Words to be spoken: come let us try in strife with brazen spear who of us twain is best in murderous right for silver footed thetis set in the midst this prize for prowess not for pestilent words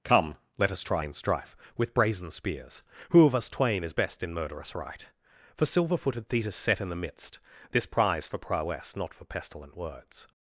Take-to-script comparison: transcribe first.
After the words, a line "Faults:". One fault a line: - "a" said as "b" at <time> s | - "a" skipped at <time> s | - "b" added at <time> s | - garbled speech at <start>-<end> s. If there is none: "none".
come let us try in strife with brazen spears who of us twain is best in murderous right for silver footed thetis set in the midst this prize for prowess not for pestilent words
Faults:
- "spear" said as "spears" at 2.3 s